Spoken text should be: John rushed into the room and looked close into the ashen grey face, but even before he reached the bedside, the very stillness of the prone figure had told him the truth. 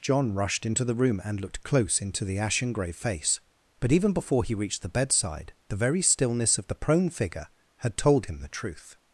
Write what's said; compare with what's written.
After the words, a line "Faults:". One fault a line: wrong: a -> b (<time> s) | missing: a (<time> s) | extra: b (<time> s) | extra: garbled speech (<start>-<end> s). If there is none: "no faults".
John rushed into the room and looked close into the ashen grey face, but even before he reached the bedside, the very stillness of the prone figure had told him the truth.
Faults:
no faults